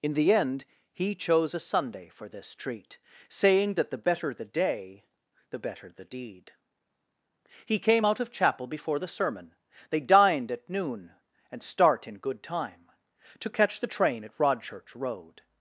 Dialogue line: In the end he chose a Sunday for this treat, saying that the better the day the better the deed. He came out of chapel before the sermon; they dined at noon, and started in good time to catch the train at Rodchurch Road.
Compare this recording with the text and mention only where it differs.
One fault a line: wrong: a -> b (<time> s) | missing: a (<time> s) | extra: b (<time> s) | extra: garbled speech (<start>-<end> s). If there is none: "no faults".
wrong: started -> start (11.6 s)